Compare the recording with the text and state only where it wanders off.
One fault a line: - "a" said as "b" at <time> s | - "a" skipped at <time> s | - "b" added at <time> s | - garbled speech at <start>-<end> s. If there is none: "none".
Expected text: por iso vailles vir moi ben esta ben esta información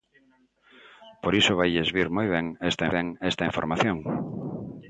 none